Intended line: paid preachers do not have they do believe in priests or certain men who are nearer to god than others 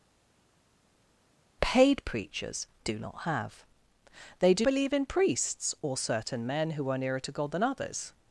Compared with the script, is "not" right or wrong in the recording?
right